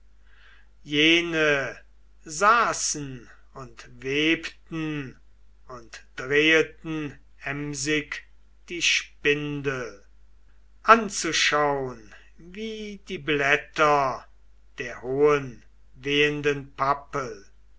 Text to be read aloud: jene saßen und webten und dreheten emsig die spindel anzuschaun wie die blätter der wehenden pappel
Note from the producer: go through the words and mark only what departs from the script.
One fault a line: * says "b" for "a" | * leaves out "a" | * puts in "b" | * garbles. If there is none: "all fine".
* puts in "hohen"